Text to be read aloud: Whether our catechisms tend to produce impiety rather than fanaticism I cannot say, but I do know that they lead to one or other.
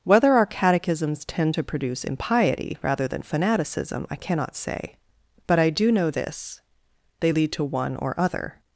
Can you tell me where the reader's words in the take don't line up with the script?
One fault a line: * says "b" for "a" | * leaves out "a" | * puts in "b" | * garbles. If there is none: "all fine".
* says "this" for "that"